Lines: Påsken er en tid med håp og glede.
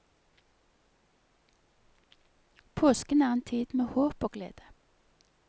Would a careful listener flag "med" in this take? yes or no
no